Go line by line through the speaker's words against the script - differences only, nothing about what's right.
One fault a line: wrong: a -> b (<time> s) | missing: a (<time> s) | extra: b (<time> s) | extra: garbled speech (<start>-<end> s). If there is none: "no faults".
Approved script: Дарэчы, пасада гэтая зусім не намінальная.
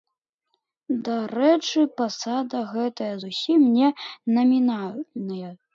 no faults